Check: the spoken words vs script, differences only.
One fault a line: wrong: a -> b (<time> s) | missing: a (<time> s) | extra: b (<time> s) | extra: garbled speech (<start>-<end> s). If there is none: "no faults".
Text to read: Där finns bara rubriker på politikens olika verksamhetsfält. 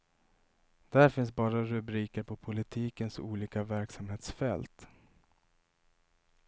no faults